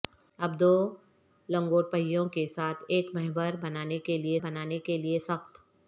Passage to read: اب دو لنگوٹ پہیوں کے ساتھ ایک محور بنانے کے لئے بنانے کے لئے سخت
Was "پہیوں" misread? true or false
false